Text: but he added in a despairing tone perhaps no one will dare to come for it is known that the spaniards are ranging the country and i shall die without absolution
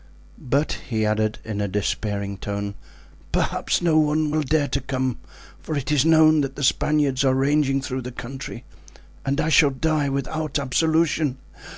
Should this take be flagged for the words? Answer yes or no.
yes